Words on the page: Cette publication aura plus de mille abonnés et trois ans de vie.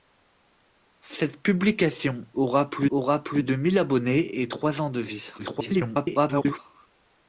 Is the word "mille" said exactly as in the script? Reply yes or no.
yes